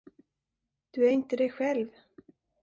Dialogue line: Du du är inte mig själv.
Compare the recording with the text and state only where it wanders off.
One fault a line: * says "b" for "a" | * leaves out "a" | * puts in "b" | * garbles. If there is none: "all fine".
* leaves out "du"
* says "dig" for "mig"